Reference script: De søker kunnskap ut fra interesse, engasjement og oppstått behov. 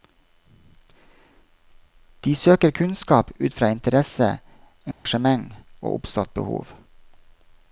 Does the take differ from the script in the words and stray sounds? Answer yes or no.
yes